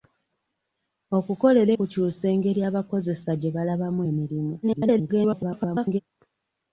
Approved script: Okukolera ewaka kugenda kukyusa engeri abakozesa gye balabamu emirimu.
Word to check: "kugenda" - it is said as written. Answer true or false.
false